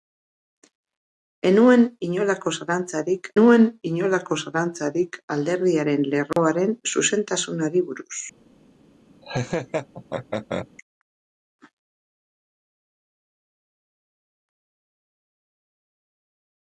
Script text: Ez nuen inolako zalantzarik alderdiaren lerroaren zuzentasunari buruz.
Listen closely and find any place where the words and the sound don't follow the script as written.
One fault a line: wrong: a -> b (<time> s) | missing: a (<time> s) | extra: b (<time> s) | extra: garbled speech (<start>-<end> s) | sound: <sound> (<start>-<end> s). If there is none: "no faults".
extra: nuen inolako zalantzarik (3.4 s)
sound: dropout (6.3-6.4 s)
sound: laugh (9.2-10.7 s)